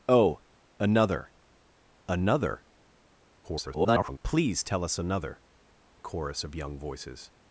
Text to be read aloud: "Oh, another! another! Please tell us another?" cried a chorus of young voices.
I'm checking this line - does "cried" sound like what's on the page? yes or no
no